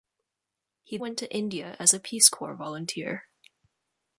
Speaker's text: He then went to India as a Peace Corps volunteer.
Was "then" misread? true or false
true